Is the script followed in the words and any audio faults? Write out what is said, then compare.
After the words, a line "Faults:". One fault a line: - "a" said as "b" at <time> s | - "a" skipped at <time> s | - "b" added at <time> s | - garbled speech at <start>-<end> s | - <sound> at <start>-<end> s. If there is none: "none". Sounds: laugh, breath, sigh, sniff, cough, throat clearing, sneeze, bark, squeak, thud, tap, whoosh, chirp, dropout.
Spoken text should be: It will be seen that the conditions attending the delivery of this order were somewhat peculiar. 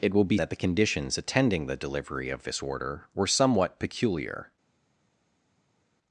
It will be that the conditions attending the delivery of this order were somewhat peculiar.
Faults:
- "seen" skipped at 0.4 s